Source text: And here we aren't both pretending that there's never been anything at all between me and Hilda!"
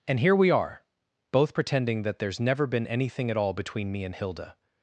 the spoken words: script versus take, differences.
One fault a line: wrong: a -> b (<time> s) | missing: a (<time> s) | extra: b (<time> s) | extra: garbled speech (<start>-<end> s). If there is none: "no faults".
wrong: aren't -> are (0.5 s)